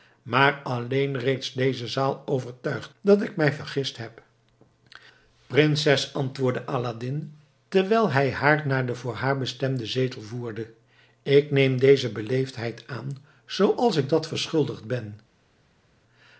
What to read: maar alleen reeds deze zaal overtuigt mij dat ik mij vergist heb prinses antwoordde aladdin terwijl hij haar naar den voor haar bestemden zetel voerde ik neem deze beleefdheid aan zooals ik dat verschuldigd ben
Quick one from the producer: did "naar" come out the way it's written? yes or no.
yes